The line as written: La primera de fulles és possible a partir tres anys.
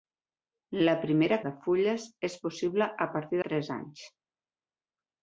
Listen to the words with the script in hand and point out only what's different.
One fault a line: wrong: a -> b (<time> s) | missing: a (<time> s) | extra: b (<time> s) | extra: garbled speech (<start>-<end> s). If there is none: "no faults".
no faults